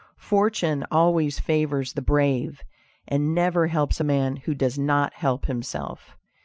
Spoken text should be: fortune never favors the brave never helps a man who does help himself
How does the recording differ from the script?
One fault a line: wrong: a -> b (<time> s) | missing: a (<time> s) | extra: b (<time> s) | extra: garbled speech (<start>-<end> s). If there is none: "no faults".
wrong: never -> always (0.9 s)
extra: and (3.0 s)
extra: not (4.8 s)